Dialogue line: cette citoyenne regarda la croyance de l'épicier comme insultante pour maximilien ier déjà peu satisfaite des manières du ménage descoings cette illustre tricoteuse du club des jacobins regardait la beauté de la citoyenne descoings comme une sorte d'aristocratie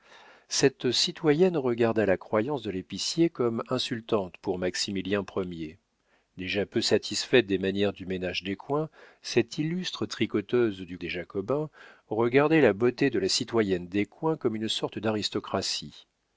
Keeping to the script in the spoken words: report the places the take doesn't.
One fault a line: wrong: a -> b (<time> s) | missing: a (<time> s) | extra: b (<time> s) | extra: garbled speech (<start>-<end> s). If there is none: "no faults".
missing: club (11.0 s)